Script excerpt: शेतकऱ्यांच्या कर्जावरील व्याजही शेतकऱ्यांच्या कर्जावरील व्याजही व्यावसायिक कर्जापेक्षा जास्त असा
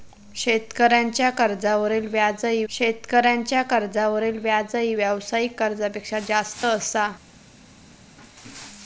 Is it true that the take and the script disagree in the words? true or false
false